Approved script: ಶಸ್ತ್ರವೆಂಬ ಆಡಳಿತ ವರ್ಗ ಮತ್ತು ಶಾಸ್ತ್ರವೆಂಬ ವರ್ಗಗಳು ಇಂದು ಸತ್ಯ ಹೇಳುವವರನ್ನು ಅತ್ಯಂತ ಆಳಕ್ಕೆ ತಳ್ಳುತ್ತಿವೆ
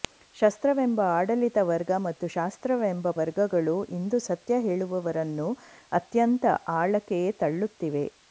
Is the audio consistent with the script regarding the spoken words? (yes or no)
yes